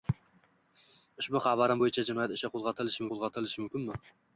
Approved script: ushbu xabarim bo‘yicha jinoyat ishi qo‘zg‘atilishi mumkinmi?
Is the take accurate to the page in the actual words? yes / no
no